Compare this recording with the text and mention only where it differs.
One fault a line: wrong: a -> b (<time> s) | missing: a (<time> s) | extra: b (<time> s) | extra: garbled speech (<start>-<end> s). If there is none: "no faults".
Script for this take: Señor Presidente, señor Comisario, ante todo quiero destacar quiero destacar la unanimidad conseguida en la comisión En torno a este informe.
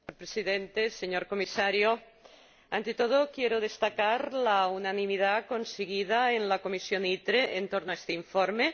missing: quiero destacar (4.3 s)
extra: ITRE (7.0 s)